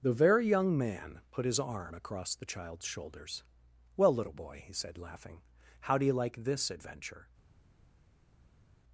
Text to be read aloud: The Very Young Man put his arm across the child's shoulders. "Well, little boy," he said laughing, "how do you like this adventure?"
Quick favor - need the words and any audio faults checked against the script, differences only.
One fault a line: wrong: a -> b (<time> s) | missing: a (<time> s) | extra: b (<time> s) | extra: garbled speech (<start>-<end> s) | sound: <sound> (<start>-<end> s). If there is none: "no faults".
no faults